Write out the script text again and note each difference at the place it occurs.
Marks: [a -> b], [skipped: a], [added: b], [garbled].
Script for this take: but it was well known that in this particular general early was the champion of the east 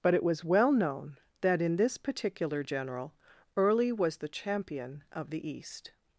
but it was well known that in this particular general early was the champion of the east